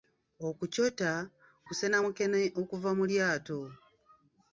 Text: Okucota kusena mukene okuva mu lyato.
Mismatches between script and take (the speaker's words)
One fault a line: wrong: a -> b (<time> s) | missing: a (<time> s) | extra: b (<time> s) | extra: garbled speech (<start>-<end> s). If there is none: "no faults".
no faults